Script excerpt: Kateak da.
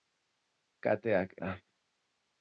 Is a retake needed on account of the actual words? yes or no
no